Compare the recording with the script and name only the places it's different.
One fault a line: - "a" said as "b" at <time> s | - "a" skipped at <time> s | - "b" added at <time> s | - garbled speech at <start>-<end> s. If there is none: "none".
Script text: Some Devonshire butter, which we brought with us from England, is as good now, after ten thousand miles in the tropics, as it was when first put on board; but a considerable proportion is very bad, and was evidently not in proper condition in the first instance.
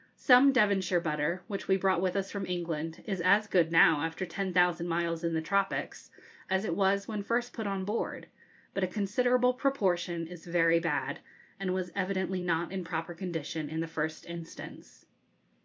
none